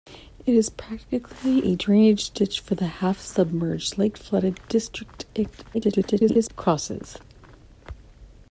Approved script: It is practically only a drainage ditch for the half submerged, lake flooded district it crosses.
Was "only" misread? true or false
true